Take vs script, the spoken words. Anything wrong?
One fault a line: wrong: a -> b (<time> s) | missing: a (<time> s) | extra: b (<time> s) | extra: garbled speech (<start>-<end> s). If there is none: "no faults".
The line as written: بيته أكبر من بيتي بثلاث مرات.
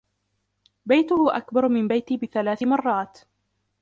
no faults